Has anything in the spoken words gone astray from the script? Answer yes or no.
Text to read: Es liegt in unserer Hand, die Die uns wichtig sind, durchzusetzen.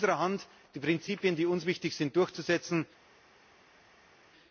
yes